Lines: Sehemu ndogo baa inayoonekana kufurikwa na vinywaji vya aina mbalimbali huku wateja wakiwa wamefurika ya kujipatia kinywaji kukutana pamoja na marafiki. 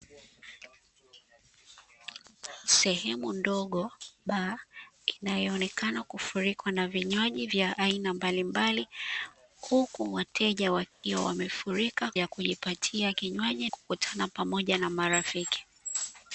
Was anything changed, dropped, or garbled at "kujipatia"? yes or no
no